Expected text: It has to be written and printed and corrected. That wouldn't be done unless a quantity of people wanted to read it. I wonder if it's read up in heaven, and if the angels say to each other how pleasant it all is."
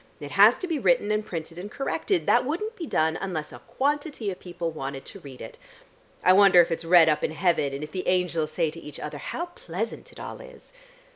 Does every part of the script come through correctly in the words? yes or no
yes